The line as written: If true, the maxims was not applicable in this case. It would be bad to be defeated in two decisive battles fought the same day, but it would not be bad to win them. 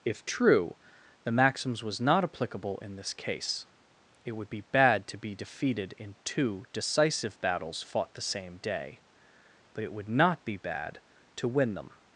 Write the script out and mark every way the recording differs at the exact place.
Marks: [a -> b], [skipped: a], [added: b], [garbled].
If true, the maxims was not applicable in this case. It would be bad to be defeated in two decisive battles fought the same day, but it would not be bad to win them.